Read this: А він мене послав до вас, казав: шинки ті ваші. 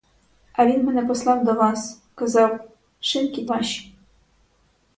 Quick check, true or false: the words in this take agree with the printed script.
false